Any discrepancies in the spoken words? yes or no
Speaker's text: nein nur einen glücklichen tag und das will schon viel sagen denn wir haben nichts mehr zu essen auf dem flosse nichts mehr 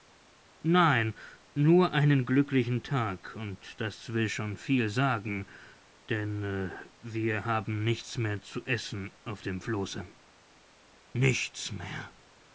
no